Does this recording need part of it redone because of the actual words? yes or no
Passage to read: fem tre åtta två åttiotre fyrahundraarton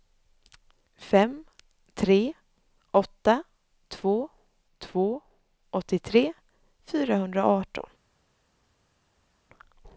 yes